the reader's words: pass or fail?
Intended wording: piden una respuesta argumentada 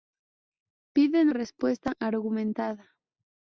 fail